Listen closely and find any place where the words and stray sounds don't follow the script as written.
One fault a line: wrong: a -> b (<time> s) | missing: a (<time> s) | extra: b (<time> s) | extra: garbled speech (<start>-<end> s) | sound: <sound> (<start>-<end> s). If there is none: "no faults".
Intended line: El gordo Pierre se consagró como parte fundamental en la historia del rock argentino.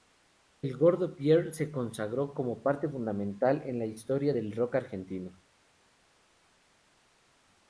no faults